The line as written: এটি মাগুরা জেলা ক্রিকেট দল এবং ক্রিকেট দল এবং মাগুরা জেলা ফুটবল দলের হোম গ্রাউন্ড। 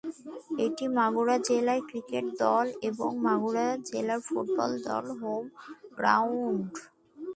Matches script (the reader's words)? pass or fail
fail